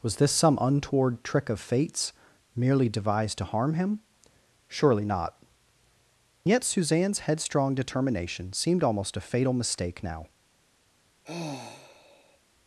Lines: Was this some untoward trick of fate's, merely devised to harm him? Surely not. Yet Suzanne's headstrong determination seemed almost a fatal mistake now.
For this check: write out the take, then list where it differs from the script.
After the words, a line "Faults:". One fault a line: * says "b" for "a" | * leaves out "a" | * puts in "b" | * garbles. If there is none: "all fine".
Was this some untoward trick of fate's, merely devised to harm him? Surely not. Yet Suzanne's headstrong determination seemed almost a fatal mistake now.
Faults:
all fine